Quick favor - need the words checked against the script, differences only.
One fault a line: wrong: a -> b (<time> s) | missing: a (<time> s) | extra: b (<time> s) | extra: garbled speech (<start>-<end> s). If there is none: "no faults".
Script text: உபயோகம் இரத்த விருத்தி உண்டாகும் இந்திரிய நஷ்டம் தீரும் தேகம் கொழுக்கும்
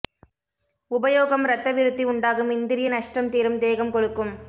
no faults